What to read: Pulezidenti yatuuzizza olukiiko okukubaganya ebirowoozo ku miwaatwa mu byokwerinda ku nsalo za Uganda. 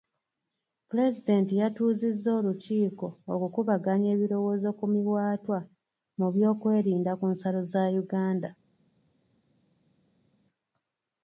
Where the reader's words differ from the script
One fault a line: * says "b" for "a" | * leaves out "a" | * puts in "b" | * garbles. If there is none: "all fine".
all fine